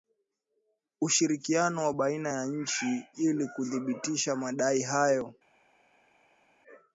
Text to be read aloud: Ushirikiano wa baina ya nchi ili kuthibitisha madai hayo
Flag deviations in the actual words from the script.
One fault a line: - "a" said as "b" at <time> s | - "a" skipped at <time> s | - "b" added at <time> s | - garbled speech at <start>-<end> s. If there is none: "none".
none